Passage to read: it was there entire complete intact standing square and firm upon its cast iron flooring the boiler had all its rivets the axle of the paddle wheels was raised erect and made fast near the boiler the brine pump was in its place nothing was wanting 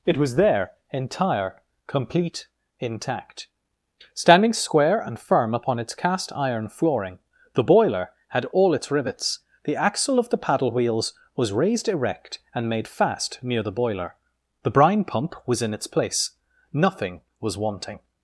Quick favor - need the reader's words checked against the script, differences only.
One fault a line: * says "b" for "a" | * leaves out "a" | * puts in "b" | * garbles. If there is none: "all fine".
all fine